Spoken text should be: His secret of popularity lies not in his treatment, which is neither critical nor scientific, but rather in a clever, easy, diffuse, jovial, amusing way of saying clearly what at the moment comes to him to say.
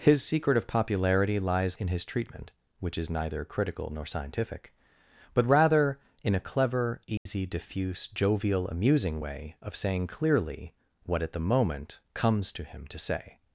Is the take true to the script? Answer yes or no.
no